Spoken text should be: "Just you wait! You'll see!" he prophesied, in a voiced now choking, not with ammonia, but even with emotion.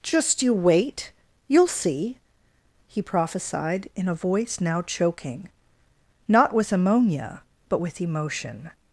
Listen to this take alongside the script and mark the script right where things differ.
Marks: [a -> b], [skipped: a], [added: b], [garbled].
"Just you wait! You'll see!" he prophesied, in a [voiced -> voice] now choking, not with ammonia, but [skipped: even] with emotion.